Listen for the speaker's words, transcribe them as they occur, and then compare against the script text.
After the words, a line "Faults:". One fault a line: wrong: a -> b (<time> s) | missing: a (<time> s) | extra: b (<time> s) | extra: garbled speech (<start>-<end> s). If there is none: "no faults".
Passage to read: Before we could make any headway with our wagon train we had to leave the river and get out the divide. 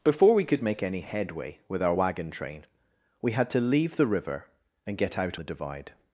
Before we could make any headway with our wagon train we had to leave the river and get out the divide.
Faults:
no faults